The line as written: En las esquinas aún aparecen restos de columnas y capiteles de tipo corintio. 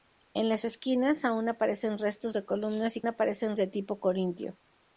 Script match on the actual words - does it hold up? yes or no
no